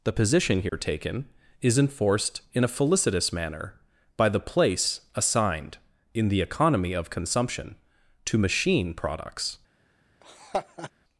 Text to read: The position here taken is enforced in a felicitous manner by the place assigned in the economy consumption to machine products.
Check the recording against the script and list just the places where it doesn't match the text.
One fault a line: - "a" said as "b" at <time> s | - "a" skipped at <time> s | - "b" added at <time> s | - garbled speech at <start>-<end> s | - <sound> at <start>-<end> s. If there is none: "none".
- dropout at 0.7-0.7 s
- "of" added at 6.9 s
- laugh at 10.2-10.9 s